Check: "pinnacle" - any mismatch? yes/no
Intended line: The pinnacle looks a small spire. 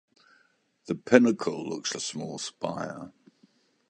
no